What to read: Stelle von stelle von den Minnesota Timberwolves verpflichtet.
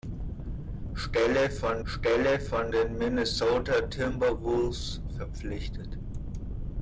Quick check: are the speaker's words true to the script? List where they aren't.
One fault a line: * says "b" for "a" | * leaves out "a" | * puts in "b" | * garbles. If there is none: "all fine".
all fine